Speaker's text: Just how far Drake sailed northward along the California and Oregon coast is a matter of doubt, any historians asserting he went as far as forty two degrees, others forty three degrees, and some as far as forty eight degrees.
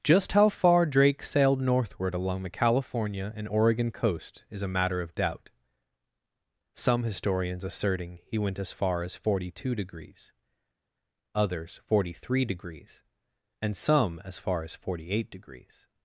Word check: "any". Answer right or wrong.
wrong